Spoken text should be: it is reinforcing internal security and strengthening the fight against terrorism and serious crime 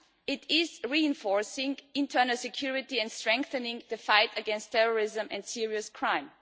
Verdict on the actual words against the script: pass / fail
pass